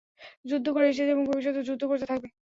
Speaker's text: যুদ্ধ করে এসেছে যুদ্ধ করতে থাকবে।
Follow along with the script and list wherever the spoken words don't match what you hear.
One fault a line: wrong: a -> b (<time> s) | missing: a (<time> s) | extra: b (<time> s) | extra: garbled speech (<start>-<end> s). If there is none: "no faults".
extra: এবং ভবিষ্যতেও (1.1 s)